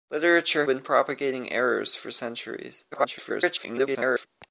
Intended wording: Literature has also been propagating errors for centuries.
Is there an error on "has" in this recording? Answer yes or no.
yes